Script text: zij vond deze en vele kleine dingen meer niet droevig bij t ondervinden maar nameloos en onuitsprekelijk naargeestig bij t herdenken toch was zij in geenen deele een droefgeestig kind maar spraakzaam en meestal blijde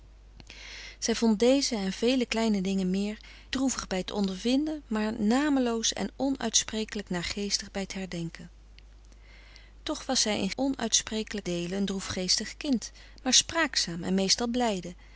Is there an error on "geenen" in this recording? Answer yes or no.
yes